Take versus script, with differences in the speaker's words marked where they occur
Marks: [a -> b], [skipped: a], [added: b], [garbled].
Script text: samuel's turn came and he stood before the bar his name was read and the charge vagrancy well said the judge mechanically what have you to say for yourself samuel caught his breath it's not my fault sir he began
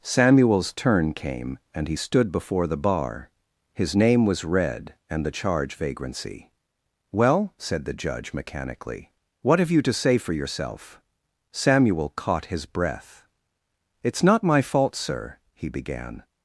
samuel's turn came and he stood before the bar his name was read and the charge vagrancy well said the judge mechanically what have you to say for yourself samuel caught his breath it's not my fault sir he began